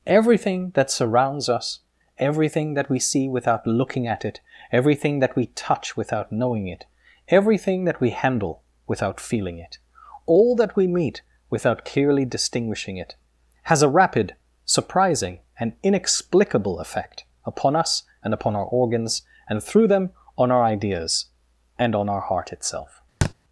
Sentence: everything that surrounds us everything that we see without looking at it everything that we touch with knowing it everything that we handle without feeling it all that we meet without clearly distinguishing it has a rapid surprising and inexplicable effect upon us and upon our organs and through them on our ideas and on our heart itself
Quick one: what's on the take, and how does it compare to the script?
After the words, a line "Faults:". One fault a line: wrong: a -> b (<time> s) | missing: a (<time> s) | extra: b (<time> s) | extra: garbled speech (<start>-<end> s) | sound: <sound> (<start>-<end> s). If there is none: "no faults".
everything that surrounds us everything that we see without looking at it everything that we touch without knowing it everything that we handle without feeling it all that we meet without clearly distinguishing it has a rapid surprising and inexplicable effect upon us and upon our organs and through them on our ideas and on our heart itself
Faults:
wrong: with -> without (6.0 s)
sound: thud (23.2-23.3 s)